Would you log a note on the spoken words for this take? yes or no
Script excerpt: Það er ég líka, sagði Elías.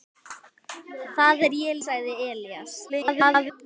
yes